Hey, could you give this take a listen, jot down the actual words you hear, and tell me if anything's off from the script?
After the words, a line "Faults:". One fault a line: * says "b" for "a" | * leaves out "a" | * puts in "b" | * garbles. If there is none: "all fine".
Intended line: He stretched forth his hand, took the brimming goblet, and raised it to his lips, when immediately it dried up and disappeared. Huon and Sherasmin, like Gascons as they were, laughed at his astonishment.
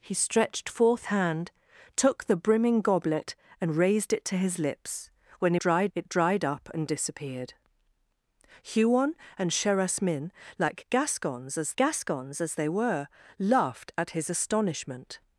He stretched forth hand, took the brimming goblet, and raised it to his lips, when dried it dried up and disappeared. Huon and Sherasmin, like Gascons as Gascons as they were, laughed at his astonishment.
Faults:
* leaves out "his"
* says "dried" for "immediately"
* puts in "Gascons as"